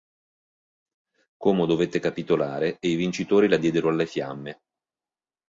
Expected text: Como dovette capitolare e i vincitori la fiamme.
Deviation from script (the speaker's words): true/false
true